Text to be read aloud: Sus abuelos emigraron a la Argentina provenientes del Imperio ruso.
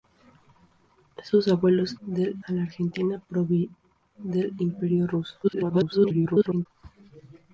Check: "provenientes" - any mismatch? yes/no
yes